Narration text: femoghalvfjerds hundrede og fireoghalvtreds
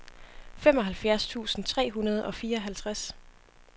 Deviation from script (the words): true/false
true